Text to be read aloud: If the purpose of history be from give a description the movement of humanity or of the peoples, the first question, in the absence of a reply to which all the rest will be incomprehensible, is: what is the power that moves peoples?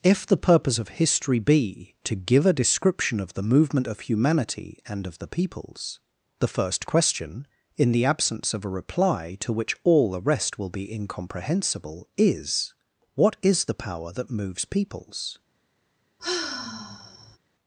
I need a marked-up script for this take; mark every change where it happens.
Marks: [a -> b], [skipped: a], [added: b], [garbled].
If the purpose of history be [from -> to] give a description [added: of] the movement of humanity [or -> and] of the peoples, the first question, in the absence of a reply to which all the rest will be incomprehensible, is: what is the power that moves peoples?